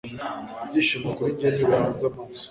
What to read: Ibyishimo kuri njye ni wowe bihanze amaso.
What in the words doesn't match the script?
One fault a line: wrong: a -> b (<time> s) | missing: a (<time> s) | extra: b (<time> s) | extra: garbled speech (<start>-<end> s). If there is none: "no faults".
missing: wowe (1.6 s)